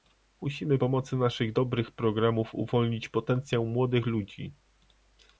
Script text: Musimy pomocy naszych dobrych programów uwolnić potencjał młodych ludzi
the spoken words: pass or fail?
pass